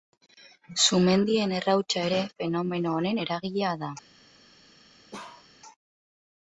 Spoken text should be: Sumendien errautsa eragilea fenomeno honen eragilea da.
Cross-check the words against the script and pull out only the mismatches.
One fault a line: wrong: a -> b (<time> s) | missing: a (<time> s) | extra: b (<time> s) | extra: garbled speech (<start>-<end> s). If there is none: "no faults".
wrong: eragilea -> ere (2.1 s)